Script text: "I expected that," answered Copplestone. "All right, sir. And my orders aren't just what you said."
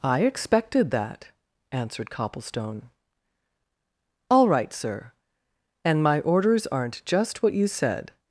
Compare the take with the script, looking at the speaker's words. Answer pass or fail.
pass